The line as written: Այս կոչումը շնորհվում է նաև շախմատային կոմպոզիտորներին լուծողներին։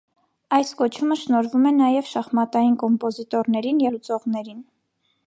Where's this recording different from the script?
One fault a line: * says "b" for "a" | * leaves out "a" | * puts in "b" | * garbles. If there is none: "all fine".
all fine